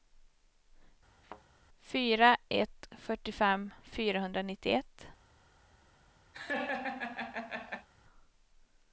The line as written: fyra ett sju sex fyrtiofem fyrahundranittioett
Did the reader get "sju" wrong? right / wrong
wrong